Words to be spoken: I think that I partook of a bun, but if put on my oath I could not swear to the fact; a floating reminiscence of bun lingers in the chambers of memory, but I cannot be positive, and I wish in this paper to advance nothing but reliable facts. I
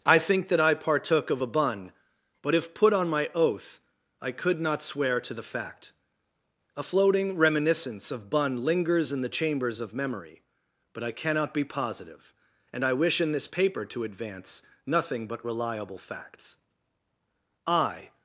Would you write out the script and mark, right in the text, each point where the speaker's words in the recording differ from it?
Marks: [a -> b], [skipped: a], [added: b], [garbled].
I think that I partook of a bun, but if put on my oath I could not swear to the fact; a floating reminiscence of bun lingers in the chambers of memory, but I cannot be positive, and I wish in this paper to advance nothing but reliable facts. I